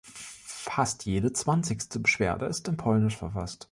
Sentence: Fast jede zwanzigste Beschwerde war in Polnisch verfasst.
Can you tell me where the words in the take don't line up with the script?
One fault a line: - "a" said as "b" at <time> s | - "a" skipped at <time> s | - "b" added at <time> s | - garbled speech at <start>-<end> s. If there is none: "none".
- "war" said as "ist" at 2.4 s